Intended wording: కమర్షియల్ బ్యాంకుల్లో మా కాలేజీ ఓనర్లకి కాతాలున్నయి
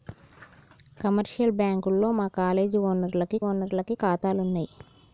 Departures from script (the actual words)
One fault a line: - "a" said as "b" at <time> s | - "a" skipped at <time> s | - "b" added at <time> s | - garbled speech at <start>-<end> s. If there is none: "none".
- "ఓనర్లకి" added at 3.4 s